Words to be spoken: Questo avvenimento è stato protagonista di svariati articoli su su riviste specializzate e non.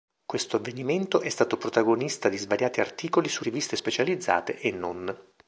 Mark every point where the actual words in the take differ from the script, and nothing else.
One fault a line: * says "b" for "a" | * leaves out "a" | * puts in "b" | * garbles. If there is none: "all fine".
* leaves out "su"